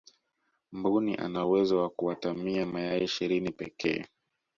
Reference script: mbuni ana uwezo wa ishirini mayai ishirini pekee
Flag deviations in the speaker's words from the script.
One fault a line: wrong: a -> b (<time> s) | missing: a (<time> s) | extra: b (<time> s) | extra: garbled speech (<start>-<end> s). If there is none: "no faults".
wrong: ishirini -> kuatamia (1.9 s)